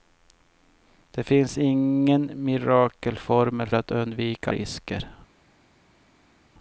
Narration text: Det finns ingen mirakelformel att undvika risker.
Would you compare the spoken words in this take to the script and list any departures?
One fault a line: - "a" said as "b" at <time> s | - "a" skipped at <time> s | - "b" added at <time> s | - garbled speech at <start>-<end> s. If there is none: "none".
none